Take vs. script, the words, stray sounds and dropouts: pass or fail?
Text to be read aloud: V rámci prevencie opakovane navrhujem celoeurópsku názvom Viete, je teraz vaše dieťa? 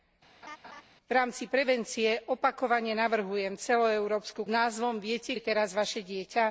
fail